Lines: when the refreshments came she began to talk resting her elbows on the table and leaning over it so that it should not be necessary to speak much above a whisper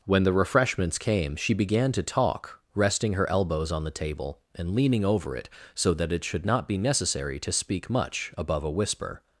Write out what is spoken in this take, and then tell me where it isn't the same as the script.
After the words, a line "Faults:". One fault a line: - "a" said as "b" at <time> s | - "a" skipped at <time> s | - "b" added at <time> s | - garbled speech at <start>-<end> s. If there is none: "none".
when the refreshments came she began to talk resting her elbows on the table and leaning over it so that it should not be necessary to speak much above a whisper
Faults:
none